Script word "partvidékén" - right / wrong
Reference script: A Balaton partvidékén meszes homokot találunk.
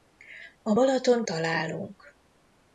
wrong